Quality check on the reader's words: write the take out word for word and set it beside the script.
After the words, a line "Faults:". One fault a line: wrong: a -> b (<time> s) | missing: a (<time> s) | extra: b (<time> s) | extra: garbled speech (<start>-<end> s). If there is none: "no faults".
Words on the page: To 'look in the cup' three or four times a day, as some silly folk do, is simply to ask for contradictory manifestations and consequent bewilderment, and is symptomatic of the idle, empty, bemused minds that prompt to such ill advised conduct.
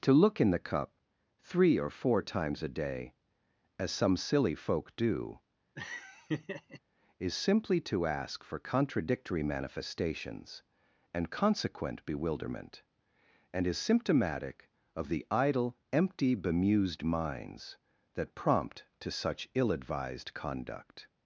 To 'look in the cup' three or four times a day, as some silly folk do, is simply to ask for contradictory manifestations and consequent bewilderment, and is symptomatic of the idle, empty, bemused minds that prompt to such ill advised conduct.
Faults:
no faults